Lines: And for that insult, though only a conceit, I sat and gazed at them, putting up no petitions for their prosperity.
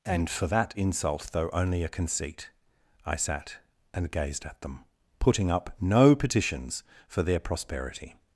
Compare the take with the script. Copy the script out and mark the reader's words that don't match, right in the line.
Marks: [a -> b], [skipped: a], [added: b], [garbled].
And for that insult, though only a conceit, I sat and gazed at them, putting up no petitions for their prosperity.